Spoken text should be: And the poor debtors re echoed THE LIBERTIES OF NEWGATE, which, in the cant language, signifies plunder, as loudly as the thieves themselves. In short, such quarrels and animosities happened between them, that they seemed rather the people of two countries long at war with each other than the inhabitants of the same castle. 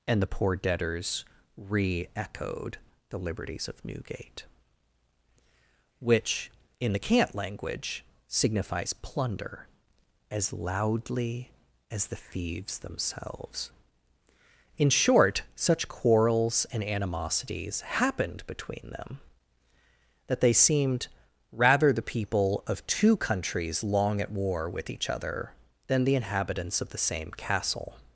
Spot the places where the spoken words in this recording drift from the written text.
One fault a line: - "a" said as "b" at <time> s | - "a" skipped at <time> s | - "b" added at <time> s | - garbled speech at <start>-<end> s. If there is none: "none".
none